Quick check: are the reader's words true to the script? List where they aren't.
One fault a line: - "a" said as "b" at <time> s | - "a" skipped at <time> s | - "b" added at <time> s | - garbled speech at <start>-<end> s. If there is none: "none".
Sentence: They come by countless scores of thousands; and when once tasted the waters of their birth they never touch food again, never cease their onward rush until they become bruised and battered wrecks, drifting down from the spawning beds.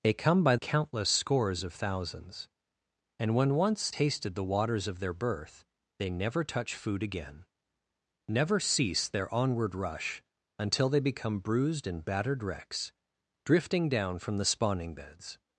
none